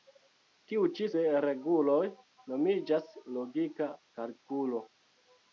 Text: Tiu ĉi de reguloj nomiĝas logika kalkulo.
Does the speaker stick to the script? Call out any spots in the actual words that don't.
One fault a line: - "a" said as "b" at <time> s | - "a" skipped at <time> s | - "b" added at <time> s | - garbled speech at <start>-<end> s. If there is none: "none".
none